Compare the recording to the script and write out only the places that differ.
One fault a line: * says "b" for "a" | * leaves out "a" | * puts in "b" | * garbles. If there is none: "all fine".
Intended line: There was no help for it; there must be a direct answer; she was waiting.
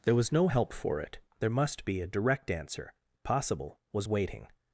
* says "possible" for "she"